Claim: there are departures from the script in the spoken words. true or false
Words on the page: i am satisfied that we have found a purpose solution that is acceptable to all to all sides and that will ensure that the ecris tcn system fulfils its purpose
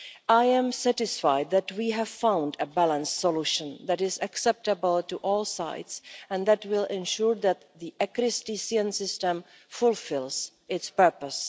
true